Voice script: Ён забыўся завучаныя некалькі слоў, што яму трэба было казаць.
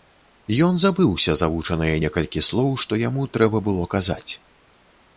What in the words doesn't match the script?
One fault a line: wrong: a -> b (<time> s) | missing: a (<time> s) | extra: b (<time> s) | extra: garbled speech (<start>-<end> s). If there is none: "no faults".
no faults